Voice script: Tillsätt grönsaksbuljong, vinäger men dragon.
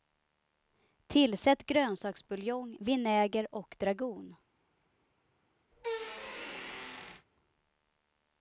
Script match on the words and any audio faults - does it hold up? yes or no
no